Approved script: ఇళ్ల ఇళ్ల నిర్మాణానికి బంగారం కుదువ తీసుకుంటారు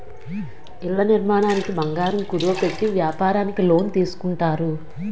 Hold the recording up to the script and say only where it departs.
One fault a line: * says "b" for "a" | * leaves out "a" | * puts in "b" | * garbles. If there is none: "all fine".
* leaves out "ఇళ్ల"
* puts in "పెట్టి వ్యాపారానికి లోన్"